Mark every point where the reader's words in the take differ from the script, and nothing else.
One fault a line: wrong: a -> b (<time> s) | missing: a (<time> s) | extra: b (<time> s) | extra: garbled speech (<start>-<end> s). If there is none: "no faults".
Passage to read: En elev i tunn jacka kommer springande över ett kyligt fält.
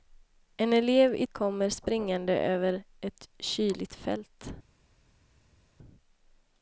missing: tunn jacka (1.3 s)